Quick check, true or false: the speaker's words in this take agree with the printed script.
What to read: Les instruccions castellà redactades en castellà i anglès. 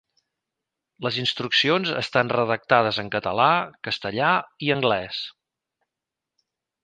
false